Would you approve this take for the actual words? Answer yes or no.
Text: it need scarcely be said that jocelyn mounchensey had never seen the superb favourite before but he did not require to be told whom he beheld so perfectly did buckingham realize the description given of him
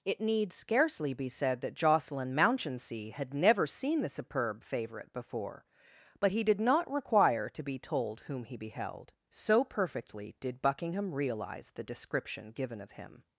yes